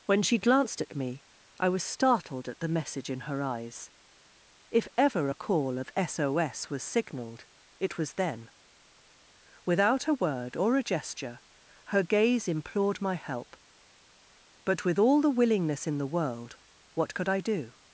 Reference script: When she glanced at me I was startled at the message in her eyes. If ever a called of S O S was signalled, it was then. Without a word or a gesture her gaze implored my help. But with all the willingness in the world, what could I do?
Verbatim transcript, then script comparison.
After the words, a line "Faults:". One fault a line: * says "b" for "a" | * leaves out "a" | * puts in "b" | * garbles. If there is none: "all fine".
When she glanced at me I was startled at the message in her eyes. If ever a call of S O S was signalled, it was then. Without a word or a gesture her gaze implored my help. But with all the willingness in the world, what could I do?
Faults:
* says "call" for "called"